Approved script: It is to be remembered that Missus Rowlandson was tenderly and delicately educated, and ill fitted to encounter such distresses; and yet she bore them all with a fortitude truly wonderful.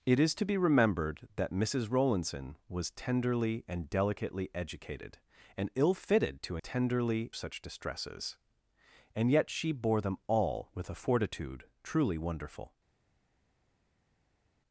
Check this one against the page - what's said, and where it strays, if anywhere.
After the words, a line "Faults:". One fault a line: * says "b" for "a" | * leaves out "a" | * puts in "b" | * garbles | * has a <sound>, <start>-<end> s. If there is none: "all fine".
It is to be remembered that Missus Rowlandson was tenderly and delicately educated, and ill fitted to tenderly such distresses; and yet she bore them all with a fortitude truly wonderful.
Faults:
* says "tenderly" for "encounter"